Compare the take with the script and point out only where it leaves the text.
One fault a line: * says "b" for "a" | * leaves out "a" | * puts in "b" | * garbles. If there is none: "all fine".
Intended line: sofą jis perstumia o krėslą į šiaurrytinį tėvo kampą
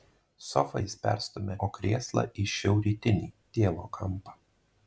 all fine